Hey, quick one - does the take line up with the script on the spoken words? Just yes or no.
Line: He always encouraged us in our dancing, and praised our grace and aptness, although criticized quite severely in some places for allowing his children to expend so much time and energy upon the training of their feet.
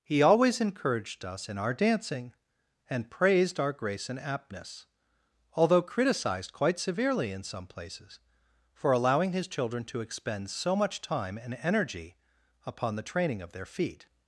yes